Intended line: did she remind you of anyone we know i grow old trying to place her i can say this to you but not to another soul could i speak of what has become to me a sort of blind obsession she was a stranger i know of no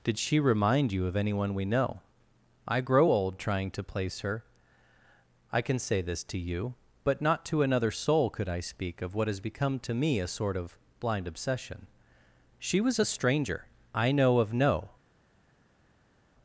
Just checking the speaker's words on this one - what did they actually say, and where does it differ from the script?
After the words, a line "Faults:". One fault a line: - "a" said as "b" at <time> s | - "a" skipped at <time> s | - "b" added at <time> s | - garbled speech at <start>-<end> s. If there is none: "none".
did she remind you of anyone we know i grow old trying to place her i can say this to you but not to another soul could i speak of what has become to me a sort of blind obsession she was a stranger i know of no
Faults:
none